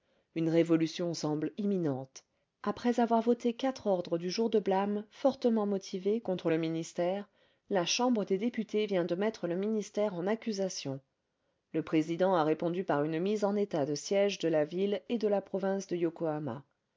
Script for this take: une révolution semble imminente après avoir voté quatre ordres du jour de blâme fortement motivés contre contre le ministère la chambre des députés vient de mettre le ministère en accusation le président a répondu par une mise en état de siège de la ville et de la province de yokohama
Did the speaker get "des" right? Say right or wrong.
right